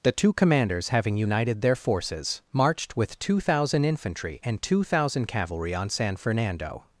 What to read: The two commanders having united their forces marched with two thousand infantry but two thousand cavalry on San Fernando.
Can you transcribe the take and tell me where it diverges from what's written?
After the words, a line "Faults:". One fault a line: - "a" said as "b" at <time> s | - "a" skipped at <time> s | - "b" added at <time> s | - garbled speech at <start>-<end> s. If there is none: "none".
The two commanders having united their forces marched with two thousand infantry and two thousand cavalry on San Fernando.
Faults:
- "but" said as "and" at 4.4 s